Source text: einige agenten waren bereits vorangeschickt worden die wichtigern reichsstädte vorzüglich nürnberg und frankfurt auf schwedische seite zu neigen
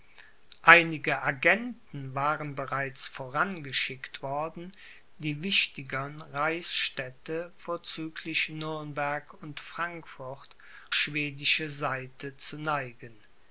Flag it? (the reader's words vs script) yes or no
yes